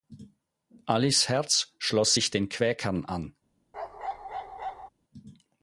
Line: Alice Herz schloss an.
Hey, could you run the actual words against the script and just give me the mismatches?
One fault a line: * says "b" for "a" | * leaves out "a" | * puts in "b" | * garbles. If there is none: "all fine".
* puts in "sich den Quäkern"